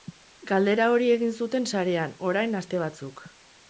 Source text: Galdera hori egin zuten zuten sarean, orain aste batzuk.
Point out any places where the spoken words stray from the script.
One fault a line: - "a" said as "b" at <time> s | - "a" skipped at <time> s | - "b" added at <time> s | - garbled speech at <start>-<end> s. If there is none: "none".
- "zuten" skipped at 1.7 s